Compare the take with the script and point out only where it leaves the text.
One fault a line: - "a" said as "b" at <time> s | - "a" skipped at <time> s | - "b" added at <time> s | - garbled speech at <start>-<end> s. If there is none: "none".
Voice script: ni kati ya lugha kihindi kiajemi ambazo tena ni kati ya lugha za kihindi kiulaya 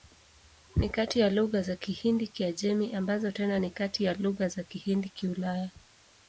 - "za" added at 1.6 s